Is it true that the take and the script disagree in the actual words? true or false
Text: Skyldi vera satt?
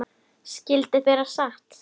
false